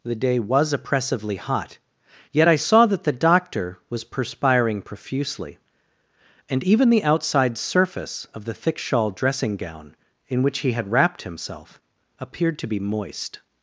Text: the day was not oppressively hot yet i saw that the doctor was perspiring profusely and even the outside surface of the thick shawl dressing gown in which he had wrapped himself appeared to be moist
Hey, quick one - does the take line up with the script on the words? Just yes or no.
no